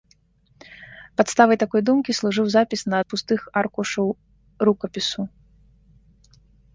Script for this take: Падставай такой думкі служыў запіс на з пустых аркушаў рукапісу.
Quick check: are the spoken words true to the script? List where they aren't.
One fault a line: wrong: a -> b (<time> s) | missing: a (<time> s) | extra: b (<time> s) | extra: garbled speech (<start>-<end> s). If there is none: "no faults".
no faults